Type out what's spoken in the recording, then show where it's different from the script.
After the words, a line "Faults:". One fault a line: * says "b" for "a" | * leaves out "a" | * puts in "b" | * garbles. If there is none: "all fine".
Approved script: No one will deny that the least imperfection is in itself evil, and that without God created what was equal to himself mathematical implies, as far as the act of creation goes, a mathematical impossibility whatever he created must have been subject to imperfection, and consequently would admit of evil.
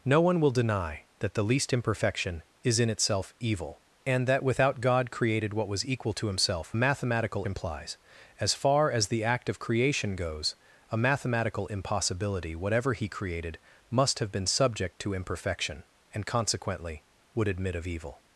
No one will deny that the least imperfection is in itself evil, and that without God created what was equal to himself mathematical implies, as far as the act of creation goes, a mathematical impossibility whatever he created must have been subject to imperfection, and consequently would admit of evil.
Faults:
all fine